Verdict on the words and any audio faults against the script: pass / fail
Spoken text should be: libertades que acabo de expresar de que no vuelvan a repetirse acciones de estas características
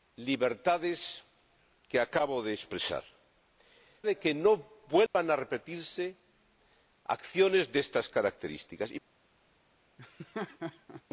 fail